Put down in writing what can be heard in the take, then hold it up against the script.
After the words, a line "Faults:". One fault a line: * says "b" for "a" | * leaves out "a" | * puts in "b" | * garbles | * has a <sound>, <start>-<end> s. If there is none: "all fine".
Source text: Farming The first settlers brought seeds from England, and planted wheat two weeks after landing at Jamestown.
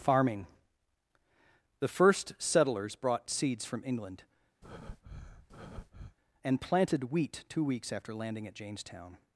Farming The first settlers brought seeds from England, and planted wheat two weeks after landing at Jamestown.
Faults:
* has a breath, 4.6-6.2 s